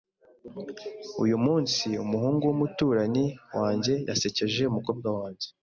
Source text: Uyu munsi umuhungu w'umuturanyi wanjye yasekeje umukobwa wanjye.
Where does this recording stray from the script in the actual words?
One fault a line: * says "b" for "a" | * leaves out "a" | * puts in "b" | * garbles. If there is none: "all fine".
all fine